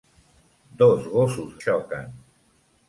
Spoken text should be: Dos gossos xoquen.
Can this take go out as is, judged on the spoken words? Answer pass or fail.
pass